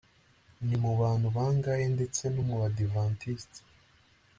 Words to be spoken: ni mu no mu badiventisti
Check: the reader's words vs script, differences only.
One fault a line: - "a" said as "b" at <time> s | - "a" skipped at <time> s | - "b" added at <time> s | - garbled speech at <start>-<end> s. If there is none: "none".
- "bantu bangahe ndetse" added at 1.0 s